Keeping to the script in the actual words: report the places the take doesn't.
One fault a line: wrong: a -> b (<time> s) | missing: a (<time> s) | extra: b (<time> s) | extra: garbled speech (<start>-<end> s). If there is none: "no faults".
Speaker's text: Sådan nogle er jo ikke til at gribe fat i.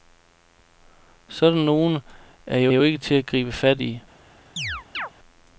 extra: jo (2.7 s)